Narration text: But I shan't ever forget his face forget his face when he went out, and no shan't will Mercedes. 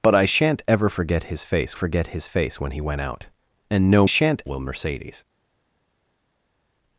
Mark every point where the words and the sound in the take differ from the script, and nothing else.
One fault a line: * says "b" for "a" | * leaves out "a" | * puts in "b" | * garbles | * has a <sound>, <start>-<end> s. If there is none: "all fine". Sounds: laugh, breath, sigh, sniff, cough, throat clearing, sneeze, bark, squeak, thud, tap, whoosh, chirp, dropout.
all fine